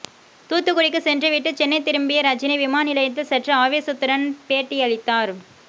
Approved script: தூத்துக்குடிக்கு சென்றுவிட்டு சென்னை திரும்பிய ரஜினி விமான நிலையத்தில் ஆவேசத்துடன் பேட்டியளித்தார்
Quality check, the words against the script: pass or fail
fail